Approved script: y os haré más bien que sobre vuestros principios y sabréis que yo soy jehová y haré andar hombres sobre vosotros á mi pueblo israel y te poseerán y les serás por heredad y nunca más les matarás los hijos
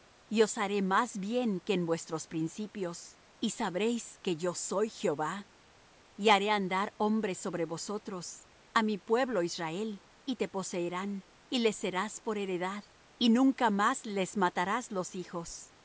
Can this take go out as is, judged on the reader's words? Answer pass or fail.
fail